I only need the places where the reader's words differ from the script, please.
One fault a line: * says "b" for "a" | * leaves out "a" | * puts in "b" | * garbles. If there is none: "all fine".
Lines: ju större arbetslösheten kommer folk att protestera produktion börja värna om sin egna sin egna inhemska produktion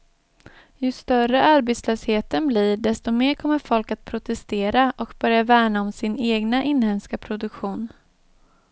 * puts in "blir desto mer"
* says "och" for "produktion"
* leaves out "sin egna"